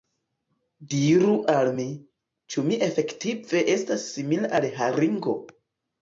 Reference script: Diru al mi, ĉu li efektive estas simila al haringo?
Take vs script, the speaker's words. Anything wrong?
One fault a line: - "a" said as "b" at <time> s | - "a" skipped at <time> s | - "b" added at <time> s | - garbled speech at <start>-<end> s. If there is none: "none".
- "li" said as "mi" at 2.7 s